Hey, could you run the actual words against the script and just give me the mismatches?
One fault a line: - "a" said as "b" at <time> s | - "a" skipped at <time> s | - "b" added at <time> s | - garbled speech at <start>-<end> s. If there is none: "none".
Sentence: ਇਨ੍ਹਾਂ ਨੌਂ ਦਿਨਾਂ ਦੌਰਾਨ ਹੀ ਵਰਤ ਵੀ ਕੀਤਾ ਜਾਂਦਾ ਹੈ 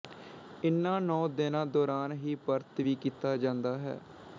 none